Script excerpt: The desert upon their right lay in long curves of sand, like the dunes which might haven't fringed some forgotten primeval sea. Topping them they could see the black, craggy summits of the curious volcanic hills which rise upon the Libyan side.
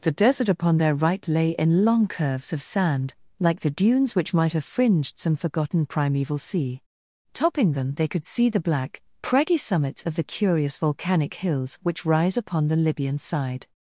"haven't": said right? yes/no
no